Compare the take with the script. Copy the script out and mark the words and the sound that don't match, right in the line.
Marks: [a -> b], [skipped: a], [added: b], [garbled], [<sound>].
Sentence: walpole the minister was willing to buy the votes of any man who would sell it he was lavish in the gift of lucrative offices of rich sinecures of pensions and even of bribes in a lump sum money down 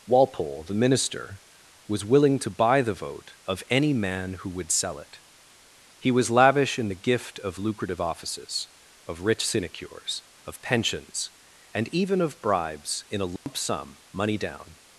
walpole the minister was willing to buy the [votes -> vote] of any man who would sell it he was lavish in the gift of lucrative offices of rich sinecures of pensions and even of bribes in a lump [dropout] sum money down